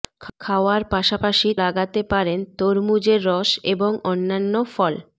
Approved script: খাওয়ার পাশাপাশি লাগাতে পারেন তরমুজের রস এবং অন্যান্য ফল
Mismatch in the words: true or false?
false